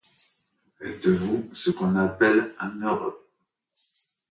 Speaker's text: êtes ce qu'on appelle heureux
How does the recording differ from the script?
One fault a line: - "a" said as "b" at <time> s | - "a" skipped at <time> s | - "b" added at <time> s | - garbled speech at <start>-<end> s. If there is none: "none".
- "vous" added at 1.1 s
- "un" added at 2.6 s